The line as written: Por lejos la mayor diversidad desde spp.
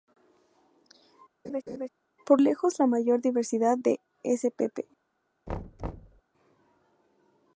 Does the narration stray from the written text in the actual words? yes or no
yes